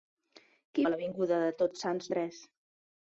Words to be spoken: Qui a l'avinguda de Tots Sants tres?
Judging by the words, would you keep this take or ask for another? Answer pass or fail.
pass